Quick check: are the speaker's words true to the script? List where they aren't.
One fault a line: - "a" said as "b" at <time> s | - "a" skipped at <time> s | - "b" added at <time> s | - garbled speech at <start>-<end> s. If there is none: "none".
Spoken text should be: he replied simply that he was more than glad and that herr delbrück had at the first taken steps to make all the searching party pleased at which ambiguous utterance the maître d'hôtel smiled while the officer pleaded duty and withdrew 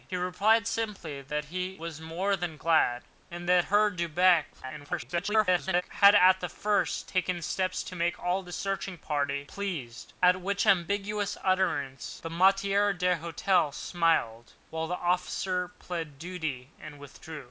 - garbled speech at 4.5-5.8 s